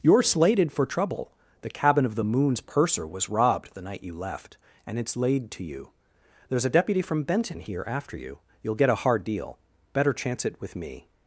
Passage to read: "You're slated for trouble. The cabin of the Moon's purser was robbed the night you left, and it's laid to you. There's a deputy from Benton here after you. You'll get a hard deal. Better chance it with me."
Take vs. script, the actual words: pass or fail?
pass